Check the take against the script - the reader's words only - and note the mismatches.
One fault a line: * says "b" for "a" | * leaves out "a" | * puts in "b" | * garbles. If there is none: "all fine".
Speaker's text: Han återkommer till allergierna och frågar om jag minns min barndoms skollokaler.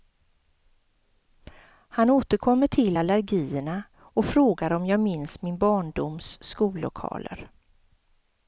all fine